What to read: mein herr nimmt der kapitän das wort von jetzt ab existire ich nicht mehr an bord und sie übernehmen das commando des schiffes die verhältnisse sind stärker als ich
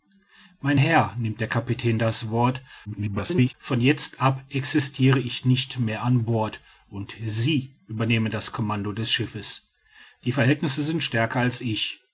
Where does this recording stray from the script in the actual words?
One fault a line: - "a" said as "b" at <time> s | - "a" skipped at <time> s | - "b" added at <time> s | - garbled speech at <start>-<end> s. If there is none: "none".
- garbled speech at 2.9-3.5 s